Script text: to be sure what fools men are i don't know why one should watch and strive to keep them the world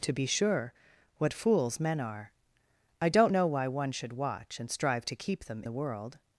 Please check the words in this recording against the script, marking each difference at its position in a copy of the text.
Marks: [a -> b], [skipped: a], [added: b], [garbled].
to be sure what fools men are i don't know why one should watch and strive to keep them the world